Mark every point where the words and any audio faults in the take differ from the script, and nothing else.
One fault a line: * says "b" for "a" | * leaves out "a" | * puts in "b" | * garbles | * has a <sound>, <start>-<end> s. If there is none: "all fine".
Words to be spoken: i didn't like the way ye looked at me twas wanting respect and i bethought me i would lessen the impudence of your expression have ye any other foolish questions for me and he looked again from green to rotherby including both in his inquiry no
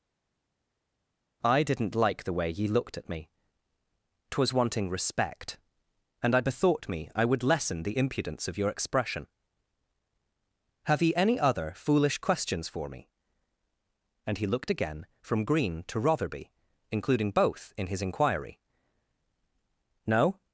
all fine